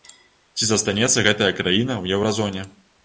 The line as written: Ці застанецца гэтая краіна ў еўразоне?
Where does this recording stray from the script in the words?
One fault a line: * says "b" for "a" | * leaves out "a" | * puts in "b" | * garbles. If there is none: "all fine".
all fine